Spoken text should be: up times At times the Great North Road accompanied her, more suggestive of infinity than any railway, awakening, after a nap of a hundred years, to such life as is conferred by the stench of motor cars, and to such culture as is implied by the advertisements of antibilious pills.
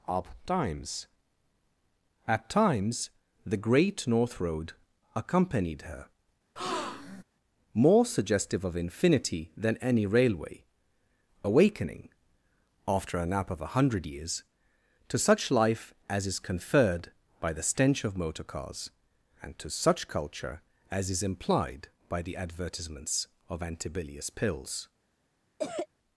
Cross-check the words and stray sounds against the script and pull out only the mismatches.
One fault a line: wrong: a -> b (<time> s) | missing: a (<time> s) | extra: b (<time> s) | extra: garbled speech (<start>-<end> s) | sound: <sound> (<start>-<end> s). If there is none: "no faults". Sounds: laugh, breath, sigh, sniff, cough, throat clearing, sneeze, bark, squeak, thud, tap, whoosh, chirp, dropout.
sound: breath (6.6-7.2 s)
sound: cough (25.6-25.9 s)